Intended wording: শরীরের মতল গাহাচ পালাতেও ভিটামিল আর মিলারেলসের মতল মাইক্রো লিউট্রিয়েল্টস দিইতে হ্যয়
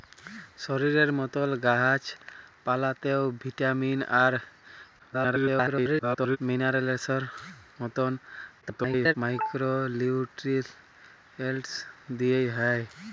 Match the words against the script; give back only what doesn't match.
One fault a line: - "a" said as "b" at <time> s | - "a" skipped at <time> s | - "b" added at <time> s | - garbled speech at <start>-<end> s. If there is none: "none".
- garbled speech at 5.0-6.4 s
- garbled speech at 8.6-9.1 s